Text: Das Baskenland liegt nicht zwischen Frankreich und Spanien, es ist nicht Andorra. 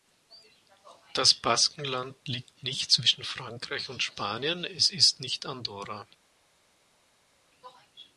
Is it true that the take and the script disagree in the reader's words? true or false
false